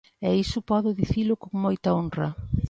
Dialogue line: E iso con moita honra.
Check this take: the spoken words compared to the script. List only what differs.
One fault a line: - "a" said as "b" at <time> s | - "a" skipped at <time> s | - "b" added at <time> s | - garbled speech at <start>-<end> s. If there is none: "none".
- "podo dicilo" added at 0.7 s